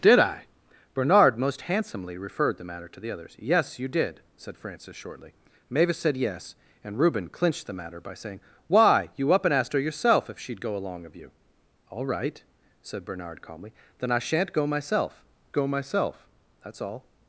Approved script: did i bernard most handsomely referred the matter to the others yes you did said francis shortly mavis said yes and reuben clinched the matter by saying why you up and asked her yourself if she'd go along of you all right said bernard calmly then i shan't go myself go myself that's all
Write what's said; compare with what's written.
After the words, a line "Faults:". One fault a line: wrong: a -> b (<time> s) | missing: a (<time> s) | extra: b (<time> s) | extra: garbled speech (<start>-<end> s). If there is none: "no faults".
did i bernard most handsomely referred the matter to the others yes you did said francis shortly mavis said yes and reuben clinched the matter by saying why you up and asked her yourself if she'd go along of you all right said bernard calmly then i shan't go myself go myself that's all
Faults:
no faults